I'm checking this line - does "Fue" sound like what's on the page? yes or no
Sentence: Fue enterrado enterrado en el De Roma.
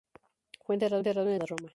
yes